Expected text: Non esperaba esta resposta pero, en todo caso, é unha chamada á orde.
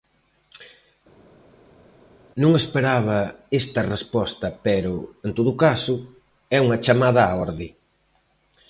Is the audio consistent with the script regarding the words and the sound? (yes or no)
yes